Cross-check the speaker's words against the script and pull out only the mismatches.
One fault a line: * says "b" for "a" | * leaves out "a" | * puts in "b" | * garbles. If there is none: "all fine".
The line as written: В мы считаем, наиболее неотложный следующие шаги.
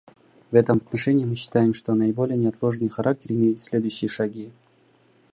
* puts in "этом отношении"
* puts in "что"
* puts in "характер имеют"